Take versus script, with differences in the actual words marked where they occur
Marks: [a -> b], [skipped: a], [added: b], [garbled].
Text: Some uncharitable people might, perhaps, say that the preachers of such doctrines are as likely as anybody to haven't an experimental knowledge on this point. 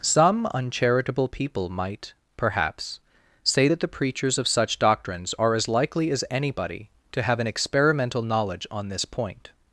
Some uncharitable people might, perhaps, say that the preachers of such doctrines are as likely as anybody to [haven't -> have] an experimental knowledge on this point.